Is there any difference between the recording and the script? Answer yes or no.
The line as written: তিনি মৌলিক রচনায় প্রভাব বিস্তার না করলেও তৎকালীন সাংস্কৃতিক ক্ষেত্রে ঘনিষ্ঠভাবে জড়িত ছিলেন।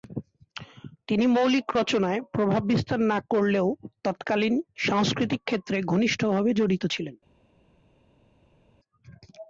no